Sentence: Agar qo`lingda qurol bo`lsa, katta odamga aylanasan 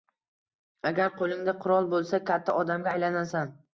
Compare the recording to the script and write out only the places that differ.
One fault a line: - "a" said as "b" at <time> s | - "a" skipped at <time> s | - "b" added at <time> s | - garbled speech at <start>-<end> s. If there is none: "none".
none